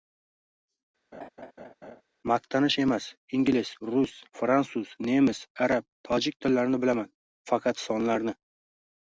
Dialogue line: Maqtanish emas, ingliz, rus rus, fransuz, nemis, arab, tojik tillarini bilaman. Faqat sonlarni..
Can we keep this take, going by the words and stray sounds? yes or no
no